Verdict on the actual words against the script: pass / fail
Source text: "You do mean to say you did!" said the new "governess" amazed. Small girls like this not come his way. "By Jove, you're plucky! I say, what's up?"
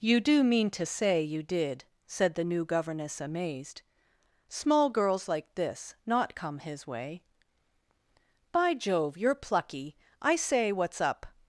pass